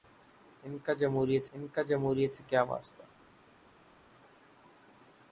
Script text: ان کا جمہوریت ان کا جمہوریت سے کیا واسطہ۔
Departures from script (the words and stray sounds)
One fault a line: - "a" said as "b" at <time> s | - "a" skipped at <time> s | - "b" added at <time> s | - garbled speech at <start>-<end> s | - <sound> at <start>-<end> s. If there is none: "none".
none